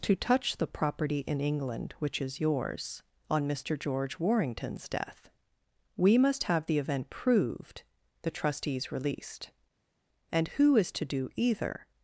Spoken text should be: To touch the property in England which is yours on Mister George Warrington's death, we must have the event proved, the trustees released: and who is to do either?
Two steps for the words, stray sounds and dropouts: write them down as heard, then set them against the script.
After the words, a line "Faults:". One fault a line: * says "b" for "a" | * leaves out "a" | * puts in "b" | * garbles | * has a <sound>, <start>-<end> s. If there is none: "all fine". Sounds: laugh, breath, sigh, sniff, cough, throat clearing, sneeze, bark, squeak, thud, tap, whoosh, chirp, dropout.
To touch the property in England which is yours on Mister George Warrington's death, we must have the event proved, the trustees released: and who is to do either?
Faults:
all fine